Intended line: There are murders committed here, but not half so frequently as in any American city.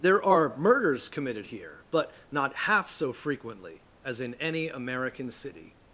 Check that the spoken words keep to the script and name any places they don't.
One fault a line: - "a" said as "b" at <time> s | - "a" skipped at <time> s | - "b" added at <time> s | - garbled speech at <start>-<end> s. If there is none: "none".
none